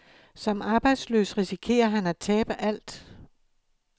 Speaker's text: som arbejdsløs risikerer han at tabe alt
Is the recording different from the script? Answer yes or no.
no